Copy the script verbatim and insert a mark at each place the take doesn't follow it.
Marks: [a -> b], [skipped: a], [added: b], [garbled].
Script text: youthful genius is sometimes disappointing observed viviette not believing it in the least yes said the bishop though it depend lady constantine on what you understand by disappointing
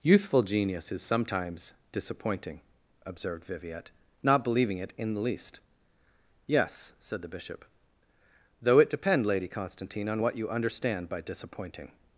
youthful genius is sometimes disappointing observed viviette not believing it in the least yes said the bishop though it depend lady constantine on what you understand by disappointing